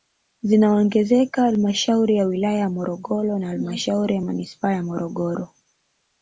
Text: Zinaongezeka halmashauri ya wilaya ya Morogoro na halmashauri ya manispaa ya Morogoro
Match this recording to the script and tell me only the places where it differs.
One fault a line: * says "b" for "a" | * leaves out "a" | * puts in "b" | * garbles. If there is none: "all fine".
all fine